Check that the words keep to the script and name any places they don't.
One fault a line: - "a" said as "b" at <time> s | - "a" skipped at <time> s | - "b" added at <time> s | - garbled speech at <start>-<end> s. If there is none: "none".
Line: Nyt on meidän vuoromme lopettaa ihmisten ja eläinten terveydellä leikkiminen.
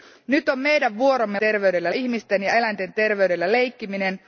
- "lopettaa" said as "terveydellä" at 1.4 s